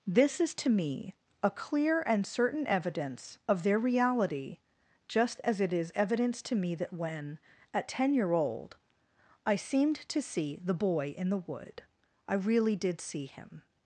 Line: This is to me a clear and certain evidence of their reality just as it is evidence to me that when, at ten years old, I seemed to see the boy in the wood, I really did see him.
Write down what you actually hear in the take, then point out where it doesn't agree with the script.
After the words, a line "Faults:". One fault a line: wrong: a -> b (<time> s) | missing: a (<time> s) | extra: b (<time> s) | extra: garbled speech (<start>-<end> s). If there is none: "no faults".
This is to me a clear and certain evidence of their reality just as it is evidence to me that when, at ten year old, I seemed to see the boy in the wood, I really did see him.
Faults:
wrong: years -> year (8.1 s)